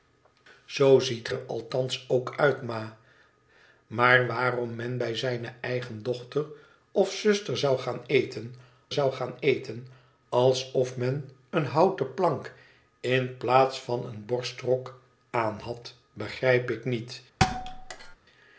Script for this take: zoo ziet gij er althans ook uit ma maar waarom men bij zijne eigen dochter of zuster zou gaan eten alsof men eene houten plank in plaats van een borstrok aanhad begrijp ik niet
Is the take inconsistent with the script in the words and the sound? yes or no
yes